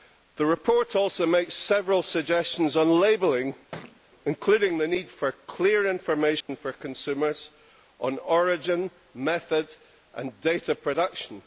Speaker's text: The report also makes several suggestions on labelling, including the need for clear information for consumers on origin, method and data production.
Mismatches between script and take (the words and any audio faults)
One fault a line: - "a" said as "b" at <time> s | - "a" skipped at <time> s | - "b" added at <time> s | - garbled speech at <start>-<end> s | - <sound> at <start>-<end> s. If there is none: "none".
- thud at 3.7-4.0 s
- dropout at 6.4-6.5 s